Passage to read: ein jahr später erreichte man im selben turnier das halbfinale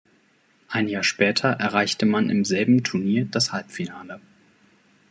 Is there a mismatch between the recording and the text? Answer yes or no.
no